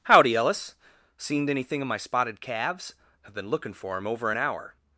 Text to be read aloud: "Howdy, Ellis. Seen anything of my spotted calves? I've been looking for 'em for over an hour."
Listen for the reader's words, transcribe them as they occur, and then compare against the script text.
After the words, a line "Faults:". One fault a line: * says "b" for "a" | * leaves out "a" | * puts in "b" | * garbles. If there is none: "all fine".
"Howdy, Ellis. Seen anything of my spotted calves? I've been looking for 'em over an hour."
Faults:
* leaves out "for"